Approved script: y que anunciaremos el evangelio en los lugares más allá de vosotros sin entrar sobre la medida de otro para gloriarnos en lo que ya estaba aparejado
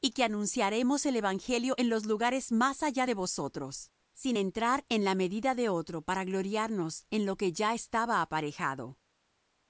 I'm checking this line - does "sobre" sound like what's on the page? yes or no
no